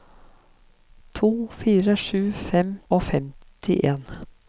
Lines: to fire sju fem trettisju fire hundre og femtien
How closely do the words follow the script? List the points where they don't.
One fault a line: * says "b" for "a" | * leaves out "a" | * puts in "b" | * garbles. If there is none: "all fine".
* leaves out "trettisju fire hundre"